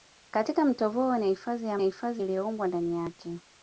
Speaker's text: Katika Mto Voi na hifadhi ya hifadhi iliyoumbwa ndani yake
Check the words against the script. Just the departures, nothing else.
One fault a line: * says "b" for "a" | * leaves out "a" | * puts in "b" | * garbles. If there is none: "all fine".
all fine